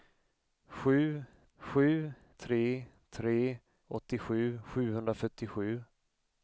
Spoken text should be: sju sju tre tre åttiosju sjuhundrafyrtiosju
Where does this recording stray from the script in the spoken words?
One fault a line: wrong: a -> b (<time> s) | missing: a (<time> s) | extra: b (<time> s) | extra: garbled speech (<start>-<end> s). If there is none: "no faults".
no faults